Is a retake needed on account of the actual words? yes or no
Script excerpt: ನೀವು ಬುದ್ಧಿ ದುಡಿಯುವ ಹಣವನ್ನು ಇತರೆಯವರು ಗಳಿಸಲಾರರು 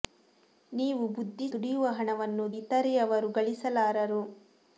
no